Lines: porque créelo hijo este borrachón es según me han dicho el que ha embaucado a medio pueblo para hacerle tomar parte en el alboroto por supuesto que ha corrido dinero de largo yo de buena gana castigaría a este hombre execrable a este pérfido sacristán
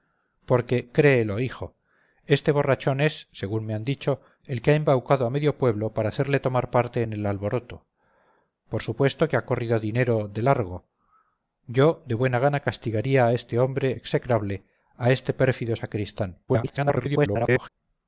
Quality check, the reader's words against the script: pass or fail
fail